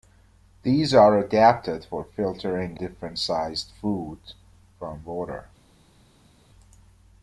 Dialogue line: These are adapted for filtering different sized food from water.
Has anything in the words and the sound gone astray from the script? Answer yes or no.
no